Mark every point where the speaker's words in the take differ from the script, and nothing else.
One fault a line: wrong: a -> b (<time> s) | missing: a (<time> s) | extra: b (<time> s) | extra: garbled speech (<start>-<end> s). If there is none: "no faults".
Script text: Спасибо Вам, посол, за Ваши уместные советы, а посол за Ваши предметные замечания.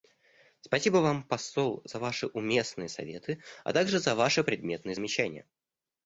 wrong: посол -> также (3.7 s)